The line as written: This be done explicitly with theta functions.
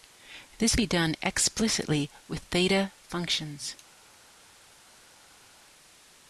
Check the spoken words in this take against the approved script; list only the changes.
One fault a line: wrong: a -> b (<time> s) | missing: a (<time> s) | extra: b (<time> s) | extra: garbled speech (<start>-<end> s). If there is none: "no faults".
no faults